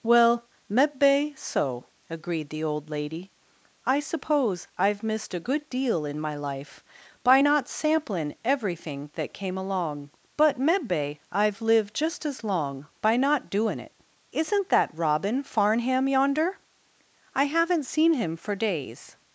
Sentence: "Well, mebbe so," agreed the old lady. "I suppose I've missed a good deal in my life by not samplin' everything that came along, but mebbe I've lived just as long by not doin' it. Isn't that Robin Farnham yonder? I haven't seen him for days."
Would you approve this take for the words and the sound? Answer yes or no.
yes